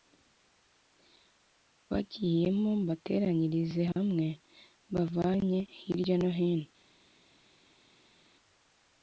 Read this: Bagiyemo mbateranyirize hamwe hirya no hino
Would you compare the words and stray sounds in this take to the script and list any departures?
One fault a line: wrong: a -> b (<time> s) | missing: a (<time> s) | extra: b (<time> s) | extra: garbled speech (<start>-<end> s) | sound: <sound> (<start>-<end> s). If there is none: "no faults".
extra: mbavanye (4.9 s)